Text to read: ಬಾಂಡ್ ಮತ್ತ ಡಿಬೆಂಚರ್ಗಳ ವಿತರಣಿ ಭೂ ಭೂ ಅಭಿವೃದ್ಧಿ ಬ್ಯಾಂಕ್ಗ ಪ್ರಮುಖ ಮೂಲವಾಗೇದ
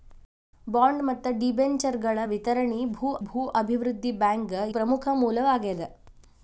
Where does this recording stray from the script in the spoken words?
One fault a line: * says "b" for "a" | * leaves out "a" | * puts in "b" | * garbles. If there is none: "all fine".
all fine